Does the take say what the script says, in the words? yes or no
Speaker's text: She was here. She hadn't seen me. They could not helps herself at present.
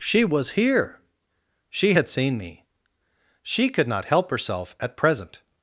no